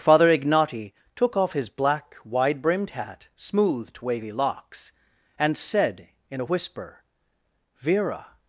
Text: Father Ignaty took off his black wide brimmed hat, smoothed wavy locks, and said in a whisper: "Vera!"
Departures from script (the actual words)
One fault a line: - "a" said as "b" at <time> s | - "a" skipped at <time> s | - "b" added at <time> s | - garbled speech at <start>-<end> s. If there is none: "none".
none